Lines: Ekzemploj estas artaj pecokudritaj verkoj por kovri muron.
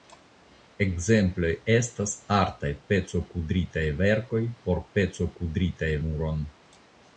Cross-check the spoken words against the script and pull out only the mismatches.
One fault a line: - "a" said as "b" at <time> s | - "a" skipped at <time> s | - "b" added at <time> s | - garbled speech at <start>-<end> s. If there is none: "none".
- "kovri" said as "pecokudritaj" at 5.0 s